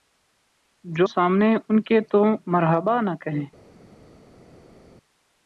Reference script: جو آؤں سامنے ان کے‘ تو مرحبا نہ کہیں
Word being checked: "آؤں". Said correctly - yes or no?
no